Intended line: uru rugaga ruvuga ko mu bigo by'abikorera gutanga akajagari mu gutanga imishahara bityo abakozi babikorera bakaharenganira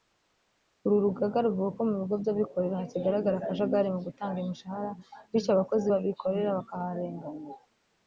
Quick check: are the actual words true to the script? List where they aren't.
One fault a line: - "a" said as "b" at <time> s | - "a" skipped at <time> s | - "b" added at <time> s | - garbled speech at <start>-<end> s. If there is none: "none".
- "gutanga" said as "hakigaragara" at 2.8 s